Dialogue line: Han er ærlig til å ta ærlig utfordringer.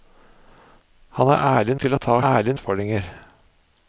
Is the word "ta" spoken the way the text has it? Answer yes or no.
yes